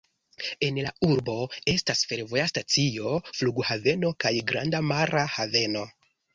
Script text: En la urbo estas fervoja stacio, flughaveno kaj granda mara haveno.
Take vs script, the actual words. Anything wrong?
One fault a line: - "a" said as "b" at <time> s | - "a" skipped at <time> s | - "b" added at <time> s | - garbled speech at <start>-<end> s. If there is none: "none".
none